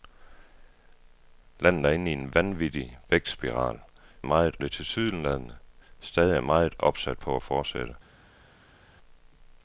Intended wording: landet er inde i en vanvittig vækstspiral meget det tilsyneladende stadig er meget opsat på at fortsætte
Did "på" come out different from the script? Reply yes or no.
no